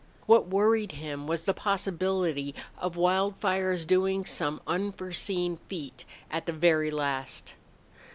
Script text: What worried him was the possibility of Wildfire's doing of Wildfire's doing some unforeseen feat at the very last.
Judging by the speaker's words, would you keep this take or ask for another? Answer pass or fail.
fail